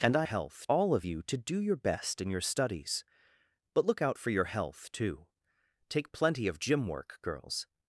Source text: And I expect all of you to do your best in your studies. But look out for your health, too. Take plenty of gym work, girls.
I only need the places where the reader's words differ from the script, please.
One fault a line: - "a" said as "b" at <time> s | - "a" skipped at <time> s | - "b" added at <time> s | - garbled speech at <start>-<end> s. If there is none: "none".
- "expect" said as "health" at 0.2 s